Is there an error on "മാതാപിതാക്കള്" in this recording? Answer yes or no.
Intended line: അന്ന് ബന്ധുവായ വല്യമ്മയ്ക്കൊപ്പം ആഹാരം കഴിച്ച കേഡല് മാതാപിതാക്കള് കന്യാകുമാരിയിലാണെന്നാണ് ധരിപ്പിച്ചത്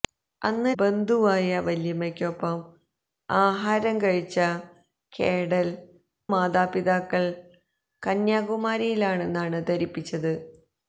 no